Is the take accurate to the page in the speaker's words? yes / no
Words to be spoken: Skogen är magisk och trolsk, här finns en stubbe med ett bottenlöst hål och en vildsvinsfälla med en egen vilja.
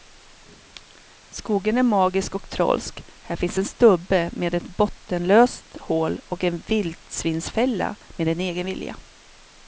yes